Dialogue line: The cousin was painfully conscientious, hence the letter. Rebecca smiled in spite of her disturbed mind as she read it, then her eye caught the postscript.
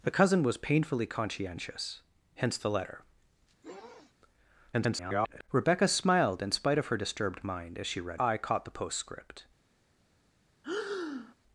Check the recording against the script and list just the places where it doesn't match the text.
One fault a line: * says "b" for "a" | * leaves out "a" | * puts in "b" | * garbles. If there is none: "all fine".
* garbles
* leaves out "it then her"